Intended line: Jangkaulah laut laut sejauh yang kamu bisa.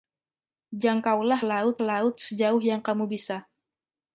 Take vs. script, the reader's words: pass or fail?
pass